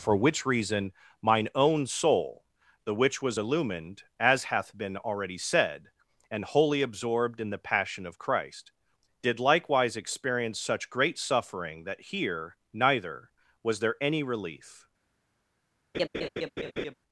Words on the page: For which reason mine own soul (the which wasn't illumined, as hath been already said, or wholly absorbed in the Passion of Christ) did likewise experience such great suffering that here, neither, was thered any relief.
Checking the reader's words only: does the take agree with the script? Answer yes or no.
no